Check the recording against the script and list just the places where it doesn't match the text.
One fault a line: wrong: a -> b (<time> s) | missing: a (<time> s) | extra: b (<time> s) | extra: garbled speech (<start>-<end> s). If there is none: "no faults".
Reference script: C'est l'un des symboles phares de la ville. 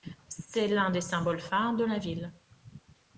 no faults